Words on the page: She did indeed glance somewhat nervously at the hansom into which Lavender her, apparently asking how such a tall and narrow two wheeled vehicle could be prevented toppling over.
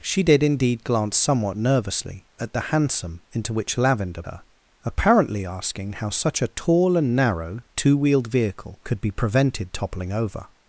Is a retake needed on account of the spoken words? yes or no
no